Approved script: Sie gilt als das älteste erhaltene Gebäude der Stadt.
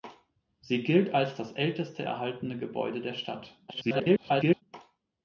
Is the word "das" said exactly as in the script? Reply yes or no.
yes